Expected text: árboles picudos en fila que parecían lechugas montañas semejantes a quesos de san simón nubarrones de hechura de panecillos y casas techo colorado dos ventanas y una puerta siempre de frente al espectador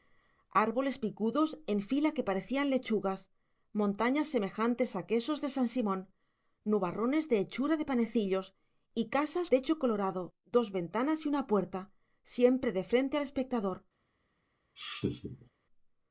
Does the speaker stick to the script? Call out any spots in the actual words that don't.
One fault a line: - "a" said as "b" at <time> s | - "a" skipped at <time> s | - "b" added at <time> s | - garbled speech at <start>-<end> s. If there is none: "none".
none